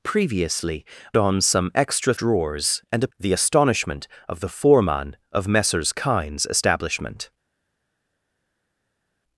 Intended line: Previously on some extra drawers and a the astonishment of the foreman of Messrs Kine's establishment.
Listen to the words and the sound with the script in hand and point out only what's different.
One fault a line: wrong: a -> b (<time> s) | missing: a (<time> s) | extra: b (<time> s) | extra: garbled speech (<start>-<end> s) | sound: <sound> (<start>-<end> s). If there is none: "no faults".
no faults